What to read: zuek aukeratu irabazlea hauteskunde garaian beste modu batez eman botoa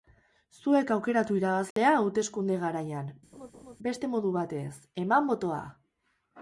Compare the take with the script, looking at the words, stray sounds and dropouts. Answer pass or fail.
fail